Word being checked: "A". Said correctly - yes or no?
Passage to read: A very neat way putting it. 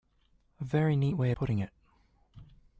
yes